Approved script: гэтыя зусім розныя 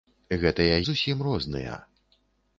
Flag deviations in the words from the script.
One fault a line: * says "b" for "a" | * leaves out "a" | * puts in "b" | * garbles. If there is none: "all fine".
all fine